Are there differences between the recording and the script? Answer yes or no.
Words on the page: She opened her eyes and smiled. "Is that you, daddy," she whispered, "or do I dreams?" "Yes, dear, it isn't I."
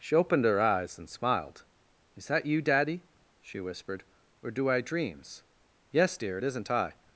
no